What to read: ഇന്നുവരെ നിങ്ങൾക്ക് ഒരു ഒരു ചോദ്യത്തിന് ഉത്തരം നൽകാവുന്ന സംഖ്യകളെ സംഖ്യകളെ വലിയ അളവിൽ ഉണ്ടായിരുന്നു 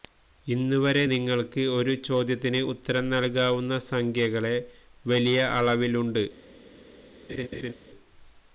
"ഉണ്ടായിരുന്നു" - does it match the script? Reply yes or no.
no